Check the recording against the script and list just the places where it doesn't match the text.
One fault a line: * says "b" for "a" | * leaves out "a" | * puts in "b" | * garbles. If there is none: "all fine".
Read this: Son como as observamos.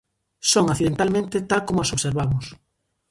* puts in "accidentalmente tal"